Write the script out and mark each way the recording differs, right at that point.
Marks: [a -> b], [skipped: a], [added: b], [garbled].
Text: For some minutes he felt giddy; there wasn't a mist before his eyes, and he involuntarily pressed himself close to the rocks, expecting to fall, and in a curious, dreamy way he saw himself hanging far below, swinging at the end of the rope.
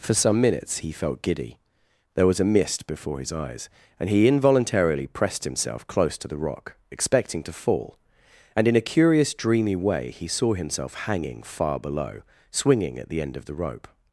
For some minutes he felt giddy; there [wasn't -> was] a mist before his eyes, and he involuntarily pressed himself close to the [rocks, -> rock] expecting to fall, and in a curious, dreamy way he saw himself hanging far below, swinging at the end of the rope.